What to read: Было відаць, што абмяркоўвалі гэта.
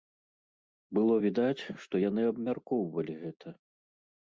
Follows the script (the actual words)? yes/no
no